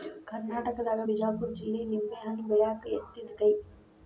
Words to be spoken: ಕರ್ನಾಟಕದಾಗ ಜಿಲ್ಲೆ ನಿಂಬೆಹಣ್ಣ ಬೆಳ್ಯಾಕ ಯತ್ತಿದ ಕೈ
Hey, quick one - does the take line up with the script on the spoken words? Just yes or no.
no